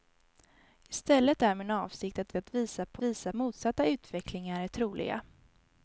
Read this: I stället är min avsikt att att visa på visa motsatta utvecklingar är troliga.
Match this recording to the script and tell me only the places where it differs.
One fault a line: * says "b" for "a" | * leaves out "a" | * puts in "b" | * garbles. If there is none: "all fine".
all fine